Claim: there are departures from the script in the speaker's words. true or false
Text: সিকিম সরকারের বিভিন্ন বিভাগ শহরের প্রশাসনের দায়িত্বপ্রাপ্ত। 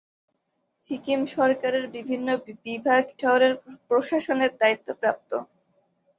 false